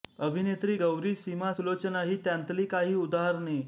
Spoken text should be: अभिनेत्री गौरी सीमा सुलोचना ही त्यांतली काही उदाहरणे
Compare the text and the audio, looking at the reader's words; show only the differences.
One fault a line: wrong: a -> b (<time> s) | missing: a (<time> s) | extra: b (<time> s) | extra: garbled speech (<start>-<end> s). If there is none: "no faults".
no faults